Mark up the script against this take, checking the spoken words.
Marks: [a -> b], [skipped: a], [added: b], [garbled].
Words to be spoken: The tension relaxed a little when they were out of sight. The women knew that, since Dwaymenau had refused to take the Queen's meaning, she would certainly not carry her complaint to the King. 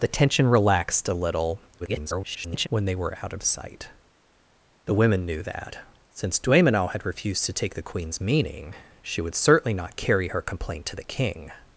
The tension relaxed a little [garbled] when they were out of sight. The women knew that, since Dwaymenau had refused to take the Queen's meaning, she would certainly not carry her complaint to the King.